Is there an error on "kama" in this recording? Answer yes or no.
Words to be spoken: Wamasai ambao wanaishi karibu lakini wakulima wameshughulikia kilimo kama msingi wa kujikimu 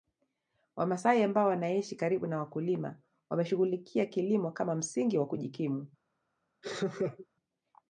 no